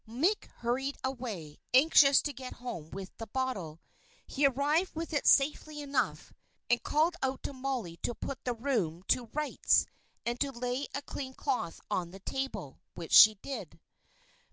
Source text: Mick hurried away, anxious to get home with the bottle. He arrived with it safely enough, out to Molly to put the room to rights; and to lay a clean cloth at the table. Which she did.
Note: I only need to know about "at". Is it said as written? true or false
false